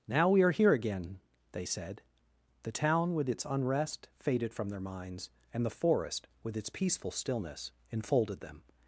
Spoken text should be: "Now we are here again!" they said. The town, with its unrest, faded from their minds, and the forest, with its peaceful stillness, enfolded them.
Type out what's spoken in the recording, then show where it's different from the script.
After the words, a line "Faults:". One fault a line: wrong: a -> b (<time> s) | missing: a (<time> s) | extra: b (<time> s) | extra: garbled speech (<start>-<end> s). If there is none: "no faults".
"Now we are here again!" they said. The town, with its unrest, faded from their minds, and the forest, with its peaceful stillness, enfolded them.
Faults:
no faults